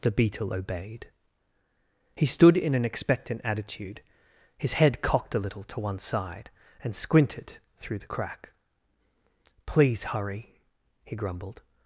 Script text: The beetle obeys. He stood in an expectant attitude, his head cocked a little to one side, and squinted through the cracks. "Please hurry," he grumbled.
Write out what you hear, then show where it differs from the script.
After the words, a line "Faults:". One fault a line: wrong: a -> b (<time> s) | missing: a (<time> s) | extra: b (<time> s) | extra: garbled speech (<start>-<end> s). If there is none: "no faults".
The beetle obeyed. He stood in an expectant attitude, his head cocked a little to one side, and squinted through the crack. "Please hurry," he grumbled.
Faults:
wrong: obeys -> obeyed (0.5 s)
wrong: cracks -> crack (8.0 s)